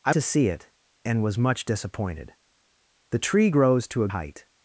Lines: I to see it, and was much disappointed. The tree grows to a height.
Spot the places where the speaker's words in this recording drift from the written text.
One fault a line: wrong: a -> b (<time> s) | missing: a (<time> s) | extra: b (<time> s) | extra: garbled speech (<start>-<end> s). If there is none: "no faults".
no faults